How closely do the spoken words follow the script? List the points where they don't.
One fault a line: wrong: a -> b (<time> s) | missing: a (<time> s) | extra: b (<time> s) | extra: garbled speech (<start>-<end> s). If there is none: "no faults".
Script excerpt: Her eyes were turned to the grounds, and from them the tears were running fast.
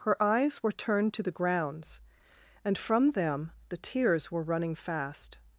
no faults